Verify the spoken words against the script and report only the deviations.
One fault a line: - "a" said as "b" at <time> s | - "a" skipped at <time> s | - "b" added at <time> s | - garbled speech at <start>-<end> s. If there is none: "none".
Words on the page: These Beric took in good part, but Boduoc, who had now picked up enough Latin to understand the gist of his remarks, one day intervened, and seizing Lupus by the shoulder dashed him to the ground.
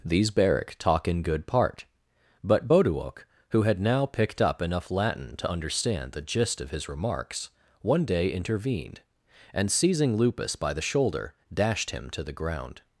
- "took" said as "talk" at 0.8 s